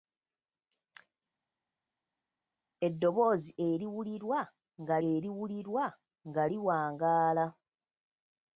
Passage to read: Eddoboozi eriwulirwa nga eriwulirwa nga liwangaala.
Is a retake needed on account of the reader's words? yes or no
no